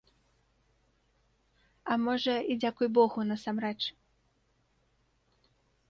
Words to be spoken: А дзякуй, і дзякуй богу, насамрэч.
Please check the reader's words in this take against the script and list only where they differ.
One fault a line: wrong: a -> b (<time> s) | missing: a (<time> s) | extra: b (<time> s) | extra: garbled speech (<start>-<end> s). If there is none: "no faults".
wrong: дзякуй -> можа (2.1 s)